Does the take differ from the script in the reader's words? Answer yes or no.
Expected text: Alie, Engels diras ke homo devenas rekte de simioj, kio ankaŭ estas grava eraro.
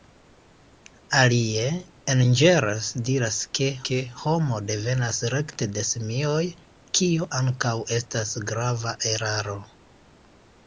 yes